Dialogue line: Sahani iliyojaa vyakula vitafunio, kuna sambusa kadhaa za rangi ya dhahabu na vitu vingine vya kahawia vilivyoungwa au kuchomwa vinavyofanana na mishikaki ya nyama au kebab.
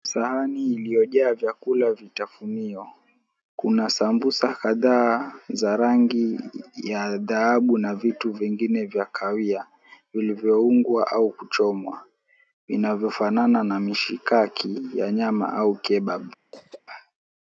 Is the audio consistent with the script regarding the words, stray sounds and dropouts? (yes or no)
no